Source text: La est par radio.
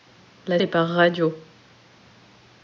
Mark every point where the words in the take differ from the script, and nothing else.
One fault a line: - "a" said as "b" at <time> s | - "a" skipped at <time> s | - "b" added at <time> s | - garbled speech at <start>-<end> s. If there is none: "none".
none